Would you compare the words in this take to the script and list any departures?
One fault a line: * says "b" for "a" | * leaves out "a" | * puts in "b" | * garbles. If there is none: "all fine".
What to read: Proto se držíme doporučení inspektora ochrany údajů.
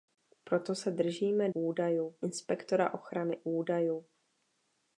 * says "údajů" for "doporučení"